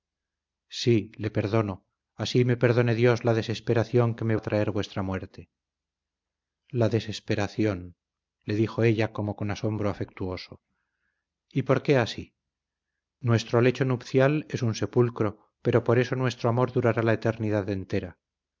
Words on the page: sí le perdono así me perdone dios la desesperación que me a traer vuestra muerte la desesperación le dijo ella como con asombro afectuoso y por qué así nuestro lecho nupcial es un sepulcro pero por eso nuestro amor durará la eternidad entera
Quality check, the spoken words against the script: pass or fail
pass